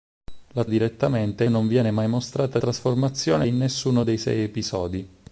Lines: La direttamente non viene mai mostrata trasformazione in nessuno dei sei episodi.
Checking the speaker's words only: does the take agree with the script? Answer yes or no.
yes